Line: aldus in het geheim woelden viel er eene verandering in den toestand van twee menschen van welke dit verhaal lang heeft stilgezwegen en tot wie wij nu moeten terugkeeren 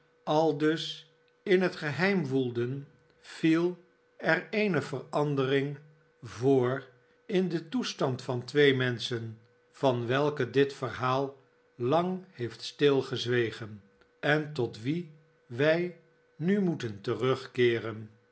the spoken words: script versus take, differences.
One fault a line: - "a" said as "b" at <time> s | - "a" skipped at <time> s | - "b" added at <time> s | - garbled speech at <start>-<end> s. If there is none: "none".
- "voor" added at 6.2 s